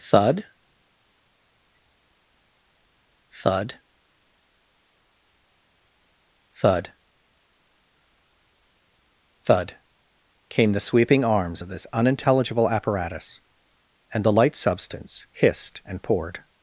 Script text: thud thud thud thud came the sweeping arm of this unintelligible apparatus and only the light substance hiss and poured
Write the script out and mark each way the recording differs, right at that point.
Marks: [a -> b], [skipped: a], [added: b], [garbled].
thud thud thud thud came the sweeping [arm -> arms] of this unintelligible apparatus and [skipped: only] the light substance [hiss -> hissed] and poured